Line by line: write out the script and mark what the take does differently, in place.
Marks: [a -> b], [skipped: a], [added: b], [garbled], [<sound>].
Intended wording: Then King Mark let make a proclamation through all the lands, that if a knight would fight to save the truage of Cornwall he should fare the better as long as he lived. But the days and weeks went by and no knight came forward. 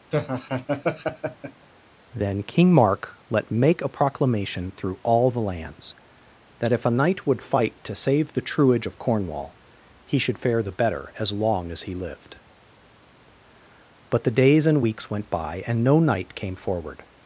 [laugh] Then King Mark let make a proclamation through all the lands, that if a knight would fight to save the truage of Cornwall he should fare the better as long as he lived. But the days and weeks went by and no knight came forward.